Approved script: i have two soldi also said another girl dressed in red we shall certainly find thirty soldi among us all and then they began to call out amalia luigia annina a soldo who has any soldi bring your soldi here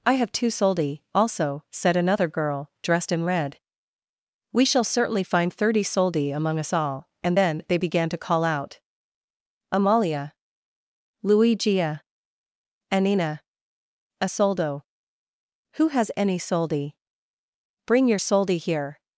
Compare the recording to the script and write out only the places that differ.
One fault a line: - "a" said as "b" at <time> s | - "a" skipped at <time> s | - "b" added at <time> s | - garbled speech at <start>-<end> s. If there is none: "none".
none